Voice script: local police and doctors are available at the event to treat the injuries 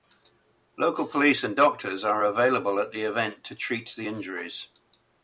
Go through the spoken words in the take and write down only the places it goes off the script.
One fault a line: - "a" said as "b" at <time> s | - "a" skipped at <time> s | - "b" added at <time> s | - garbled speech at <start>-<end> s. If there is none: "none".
none